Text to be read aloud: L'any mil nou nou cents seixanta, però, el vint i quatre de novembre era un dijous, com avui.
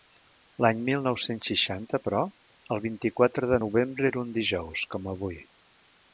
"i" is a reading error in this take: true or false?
false